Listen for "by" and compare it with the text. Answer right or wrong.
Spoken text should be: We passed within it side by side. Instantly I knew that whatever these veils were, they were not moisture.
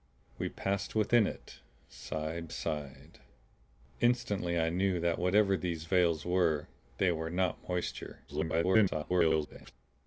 wrong